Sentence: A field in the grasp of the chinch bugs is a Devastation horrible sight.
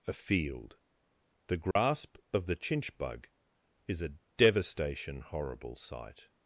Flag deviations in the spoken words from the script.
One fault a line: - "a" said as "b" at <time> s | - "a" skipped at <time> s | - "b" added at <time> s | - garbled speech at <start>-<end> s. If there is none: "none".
- "in" skipped at 0.8 s
- "bugs" said as "bug" at 3.0 s